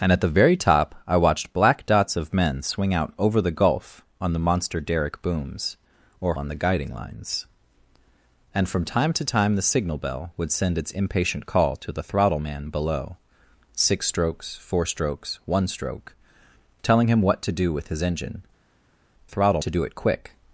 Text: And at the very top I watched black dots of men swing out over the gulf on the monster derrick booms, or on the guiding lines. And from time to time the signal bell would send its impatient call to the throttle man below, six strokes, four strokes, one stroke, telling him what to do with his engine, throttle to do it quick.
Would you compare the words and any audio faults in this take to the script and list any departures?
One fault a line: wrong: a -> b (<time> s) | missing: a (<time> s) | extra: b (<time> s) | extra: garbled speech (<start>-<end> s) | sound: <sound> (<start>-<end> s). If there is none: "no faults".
no faults